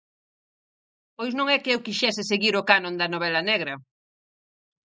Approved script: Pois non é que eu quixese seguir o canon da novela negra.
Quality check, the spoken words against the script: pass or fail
pass